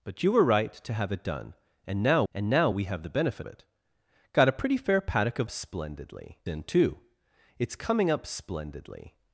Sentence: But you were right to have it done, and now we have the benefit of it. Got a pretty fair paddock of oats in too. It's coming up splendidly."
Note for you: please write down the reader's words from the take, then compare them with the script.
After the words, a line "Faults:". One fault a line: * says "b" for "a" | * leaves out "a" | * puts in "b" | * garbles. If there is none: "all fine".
But you were right to have it done, and now and now we have the benefit it. Got a pretty fair paddock of splendidly in too. It's coming up splendidly."
Faults:
* puts in "and now"
* leaves out "of"
* says "splendidly" for "oats"